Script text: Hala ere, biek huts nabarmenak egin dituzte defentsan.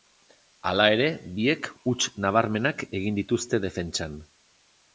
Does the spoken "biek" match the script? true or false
true